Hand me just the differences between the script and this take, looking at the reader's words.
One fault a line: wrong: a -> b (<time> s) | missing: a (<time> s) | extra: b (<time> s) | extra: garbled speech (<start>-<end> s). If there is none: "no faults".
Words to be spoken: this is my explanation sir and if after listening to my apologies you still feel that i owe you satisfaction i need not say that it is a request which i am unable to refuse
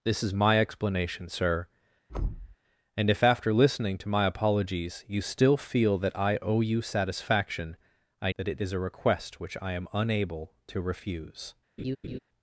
missing: need not say (8.3 s)